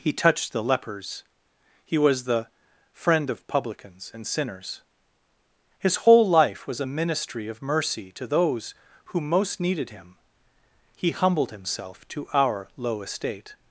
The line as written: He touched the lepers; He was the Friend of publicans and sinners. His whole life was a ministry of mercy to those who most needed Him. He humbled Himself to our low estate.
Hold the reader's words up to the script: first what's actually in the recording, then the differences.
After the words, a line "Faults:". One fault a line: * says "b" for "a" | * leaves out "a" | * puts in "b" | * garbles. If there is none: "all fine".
He touched the lepers; He was the Friend of publicans and sinners. His whole life was a ministry of mercy to those who most needed Him. He humbled Himself to our low estate.
Faults:
all fine